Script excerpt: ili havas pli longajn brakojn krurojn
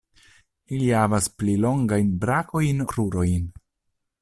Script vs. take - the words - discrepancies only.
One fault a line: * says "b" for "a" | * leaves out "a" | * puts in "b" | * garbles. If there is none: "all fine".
all fine